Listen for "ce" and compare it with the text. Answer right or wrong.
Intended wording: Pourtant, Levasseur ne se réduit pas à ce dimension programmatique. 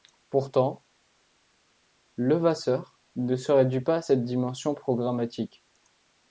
wrong